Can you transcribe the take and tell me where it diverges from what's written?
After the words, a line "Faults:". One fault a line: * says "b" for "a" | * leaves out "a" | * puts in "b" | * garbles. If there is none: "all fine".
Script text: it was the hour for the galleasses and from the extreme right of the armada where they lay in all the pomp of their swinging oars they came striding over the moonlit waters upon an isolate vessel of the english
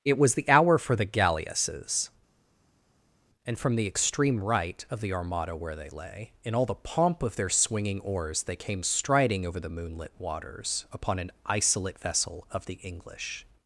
it was the hour for the galleasses and from the extreme right of the armada where they lay in all the pomp of their swinging oars they came striding over the moonlit waters upon an isolate vessel of the english
Faults:
all fine